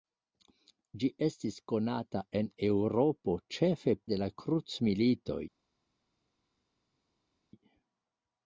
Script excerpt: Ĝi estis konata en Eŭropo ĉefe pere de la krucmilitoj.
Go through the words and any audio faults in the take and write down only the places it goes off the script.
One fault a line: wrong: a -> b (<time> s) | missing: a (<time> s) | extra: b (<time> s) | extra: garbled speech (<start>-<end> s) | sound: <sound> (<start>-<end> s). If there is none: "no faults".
missing: pere (4.0 s)